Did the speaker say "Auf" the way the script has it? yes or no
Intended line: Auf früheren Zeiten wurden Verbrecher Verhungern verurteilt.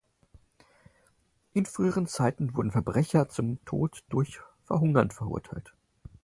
no